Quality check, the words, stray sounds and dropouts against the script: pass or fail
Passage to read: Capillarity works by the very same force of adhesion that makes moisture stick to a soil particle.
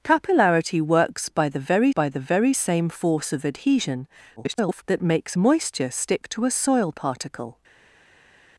fail